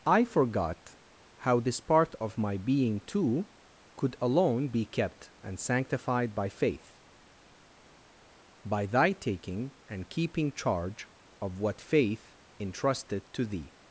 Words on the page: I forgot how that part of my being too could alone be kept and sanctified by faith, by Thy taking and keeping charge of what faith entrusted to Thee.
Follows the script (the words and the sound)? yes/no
no